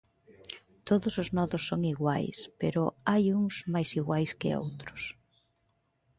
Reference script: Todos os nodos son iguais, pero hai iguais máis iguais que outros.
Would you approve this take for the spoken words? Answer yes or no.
no